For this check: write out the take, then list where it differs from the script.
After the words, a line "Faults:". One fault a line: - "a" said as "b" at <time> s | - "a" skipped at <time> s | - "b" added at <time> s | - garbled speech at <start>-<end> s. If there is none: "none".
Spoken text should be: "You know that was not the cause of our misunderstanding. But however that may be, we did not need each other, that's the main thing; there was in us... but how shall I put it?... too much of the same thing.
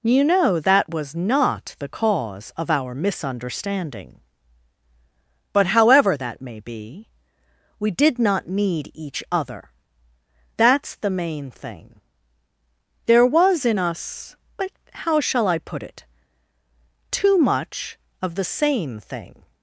"You know that was not the cause of our misunderstanding. But however that may be, we did not need each other, that's the main thing; there was in us... but how shall I put it?... too much of the same thing.
Faults:
none